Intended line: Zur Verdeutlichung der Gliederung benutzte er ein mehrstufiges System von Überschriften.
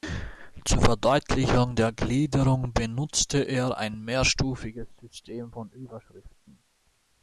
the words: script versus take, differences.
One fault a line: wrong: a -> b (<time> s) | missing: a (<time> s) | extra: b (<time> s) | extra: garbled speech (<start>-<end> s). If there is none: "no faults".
no faults